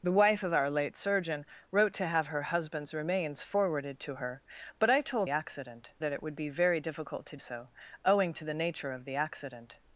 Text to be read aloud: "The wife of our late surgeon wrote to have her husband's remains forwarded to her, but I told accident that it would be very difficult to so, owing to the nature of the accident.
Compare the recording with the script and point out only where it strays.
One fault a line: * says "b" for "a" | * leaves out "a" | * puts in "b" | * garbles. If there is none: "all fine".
all fine